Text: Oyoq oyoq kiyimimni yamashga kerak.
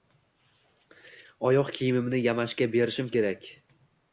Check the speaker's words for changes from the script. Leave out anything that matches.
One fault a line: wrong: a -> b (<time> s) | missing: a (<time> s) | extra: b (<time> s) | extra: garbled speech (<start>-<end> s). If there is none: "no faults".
missing: oyoq (1.7 s)
extra: berishim (2.8 s)